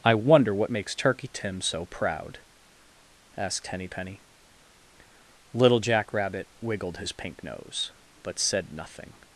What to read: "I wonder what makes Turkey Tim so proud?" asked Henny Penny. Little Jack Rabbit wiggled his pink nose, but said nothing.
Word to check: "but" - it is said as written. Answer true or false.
true